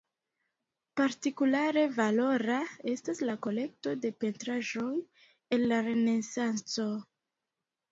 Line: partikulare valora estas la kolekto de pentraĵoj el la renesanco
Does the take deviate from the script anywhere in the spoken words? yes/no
no